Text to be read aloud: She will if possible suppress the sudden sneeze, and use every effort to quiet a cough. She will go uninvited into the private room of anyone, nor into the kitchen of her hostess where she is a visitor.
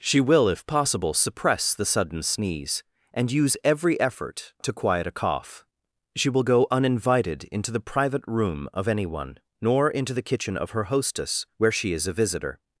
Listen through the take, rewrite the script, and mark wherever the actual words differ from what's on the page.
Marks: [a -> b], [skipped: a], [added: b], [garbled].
She will if possible suppress the sudden sneeze, and use every effort to quiet a cough. She will go uninvited into the private room of anyone, nor into the kitchen of her hostess where she is a visitor.